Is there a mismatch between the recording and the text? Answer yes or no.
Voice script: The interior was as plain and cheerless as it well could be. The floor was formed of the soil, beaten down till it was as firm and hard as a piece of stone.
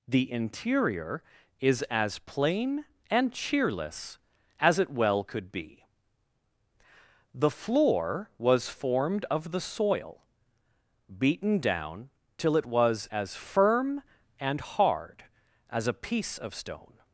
yes